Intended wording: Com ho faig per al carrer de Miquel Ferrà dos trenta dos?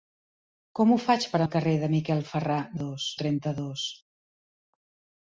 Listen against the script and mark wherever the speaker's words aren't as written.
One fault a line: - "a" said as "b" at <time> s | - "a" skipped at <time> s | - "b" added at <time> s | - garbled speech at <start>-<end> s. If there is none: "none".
none